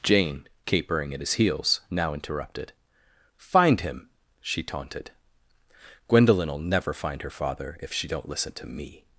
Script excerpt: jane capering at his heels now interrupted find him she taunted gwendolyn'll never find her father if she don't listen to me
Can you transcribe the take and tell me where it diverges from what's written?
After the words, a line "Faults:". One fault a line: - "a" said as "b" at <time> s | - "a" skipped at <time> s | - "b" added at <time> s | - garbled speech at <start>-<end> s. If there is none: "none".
jane capering at his heels now interrupted find him she taunted gwendolyn'll never find her father if she don't listen to me
Faults:
none